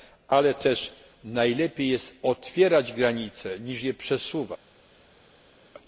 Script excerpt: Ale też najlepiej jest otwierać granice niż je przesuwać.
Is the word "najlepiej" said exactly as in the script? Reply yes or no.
yes